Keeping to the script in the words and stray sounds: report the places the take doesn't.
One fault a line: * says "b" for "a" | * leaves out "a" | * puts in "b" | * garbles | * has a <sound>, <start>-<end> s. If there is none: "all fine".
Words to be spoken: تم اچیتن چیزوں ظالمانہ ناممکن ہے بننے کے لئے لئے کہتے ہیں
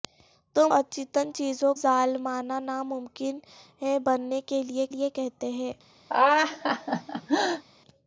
* has a laugh, 6.1-7.6 s